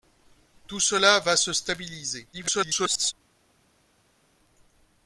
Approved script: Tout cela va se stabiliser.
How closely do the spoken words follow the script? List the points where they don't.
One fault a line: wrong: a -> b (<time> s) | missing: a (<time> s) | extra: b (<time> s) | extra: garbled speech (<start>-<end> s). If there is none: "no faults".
extra: garbled speech (2.3-3.1 s)